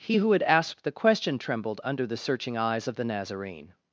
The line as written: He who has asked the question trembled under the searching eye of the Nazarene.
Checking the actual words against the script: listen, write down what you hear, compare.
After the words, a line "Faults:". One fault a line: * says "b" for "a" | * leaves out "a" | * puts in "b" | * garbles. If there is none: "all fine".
He who had asked the question trembled under the searching eyes of the Nazarene.
Faults:
* says "had" for "has"
* says "eyes" for "eye"